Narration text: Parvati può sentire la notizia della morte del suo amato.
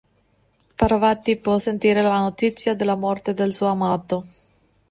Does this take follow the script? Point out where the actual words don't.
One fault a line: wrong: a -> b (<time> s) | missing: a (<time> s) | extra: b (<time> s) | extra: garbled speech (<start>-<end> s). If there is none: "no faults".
no faults